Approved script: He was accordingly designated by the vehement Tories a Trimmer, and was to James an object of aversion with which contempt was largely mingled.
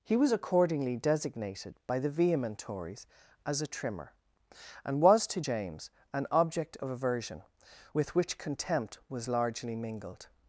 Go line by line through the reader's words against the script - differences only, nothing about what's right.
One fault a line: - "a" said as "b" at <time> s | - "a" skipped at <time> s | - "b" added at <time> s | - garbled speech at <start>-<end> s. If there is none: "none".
- "as" added at 3.5 s